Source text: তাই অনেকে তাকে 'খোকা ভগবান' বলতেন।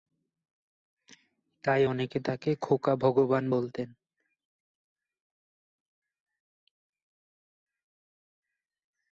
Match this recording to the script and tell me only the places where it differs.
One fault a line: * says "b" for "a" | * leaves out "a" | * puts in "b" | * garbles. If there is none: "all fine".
all fine